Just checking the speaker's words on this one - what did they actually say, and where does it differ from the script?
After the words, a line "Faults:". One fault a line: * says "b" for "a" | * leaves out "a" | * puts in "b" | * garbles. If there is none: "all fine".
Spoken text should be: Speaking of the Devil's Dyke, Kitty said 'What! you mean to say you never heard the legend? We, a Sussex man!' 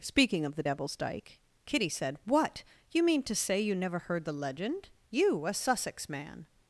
Speaking of the Devil's Dyke, Kitty said 'What! you mean to say you never heard the legend? You, a Sussex man!'
Faults:
* says "You" for "We"